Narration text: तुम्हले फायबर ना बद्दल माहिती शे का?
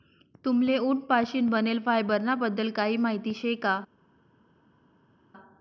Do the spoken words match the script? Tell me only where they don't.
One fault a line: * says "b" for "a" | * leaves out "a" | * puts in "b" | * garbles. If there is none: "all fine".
* puts in "उंट पाशीन बनेल"
* puts in "काही"